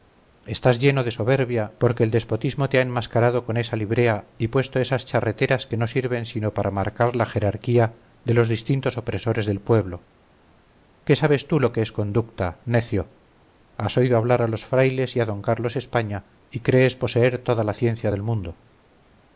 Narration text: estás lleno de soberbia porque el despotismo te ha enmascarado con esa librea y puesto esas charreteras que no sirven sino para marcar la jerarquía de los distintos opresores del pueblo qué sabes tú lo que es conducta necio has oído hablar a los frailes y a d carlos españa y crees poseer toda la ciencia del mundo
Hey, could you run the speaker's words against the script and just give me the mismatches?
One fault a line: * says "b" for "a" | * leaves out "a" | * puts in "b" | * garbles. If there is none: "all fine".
all fine